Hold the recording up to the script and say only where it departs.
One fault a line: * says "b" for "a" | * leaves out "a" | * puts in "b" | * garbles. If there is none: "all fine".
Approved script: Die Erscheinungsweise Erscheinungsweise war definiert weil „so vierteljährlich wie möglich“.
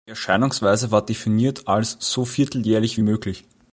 * leaves out "Erscheinungsweise"
* says "als" for "weil"